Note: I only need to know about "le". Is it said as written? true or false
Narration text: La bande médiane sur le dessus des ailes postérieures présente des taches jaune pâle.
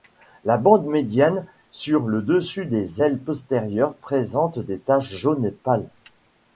true